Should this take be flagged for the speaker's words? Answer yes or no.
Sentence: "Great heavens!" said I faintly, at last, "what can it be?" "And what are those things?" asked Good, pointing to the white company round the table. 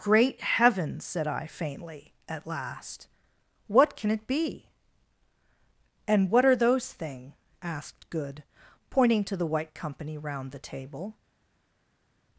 yes